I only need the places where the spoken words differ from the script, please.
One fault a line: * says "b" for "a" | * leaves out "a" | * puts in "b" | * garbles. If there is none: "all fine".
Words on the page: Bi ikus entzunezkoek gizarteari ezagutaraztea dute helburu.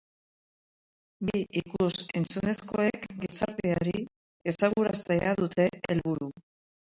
all fine